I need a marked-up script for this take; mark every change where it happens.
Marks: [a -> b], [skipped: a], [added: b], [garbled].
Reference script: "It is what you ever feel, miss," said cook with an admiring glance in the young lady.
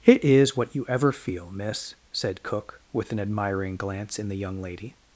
"It is what you ever feel, miss," said cook with an admiring glance in the young lady.